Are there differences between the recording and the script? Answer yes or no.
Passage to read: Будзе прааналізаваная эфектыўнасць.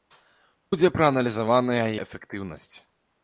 no